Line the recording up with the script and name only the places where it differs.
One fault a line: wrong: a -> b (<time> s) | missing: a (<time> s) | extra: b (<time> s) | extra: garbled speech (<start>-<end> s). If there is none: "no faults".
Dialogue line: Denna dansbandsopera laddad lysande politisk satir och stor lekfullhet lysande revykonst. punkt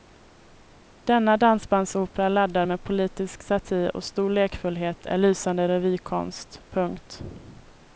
wrong: lysande -> med (2.6 s)
extra: är (5.0 s)